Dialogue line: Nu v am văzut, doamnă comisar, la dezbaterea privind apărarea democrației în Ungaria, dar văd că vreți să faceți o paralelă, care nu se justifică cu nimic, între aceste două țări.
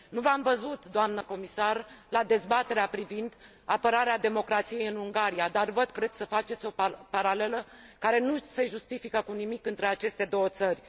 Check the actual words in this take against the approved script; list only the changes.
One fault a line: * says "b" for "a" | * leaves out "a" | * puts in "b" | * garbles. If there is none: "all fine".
all fine